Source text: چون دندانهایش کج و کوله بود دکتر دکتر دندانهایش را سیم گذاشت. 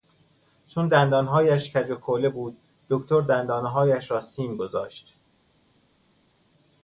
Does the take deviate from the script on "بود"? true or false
false